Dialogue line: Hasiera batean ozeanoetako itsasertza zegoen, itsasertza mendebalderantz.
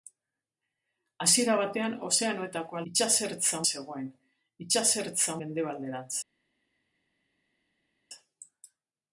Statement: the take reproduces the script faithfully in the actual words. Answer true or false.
true